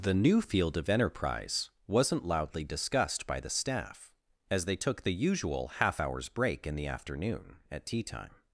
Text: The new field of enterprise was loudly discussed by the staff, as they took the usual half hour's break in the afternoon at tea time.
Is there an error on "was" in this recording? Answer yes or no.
yes